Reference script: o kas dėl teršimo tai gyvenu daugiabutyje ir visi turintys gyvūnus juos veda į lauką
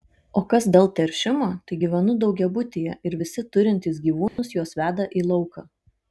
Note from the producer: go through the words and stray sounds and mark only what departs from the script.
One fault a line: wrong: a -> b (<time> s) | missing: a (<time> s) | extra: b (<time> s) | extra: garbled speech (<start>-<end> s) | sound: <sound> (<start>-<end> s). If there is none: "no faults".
sound: dropout (4.3-4.4 s)